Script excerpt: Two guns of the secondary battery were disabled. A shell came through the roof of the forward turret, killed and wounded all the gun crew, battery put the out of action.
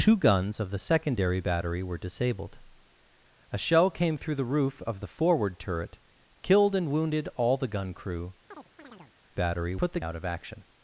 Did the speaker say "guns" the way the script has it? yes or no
yes